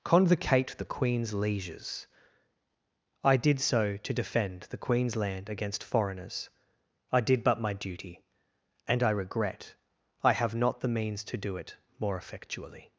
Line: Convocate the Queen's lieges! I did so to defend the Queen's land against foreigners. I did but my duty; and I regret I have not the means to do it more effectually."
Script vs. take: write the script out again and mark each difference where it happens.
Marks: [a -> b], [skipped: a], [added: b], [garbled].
Convocate the Queen's lieges! I did so to defend the Queen's land against foreigners. I did but my duty; and I regret I have not the means to do it more effectually."